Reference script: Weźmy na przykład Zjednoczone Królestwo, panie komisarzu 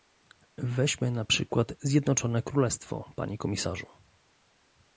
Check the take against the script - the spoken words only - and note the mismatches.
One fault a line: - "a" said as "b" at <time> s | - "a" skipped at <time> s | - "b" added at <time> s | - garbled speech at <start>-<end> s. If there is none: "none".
none